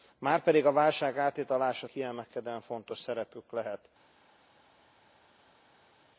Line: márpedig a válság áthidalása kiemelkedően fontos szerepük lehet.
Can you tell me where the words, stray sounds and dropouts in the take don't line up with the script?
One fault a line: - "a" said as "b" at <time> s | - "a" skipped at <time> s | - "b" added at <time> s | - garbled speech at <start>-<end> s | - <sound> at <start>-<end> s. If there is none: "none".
none